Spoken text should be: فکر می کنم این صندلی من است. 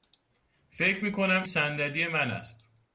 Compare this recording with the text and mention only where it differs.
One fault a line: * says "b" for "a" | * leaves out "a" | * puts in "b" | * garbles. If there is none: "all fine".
* leaves out "این"